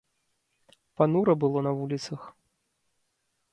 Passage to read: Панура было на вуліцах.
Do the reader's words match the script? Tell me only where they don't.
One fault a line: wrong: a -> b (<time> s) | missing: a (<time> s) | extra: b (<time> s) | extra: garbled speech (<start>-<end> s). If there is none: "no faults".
no faults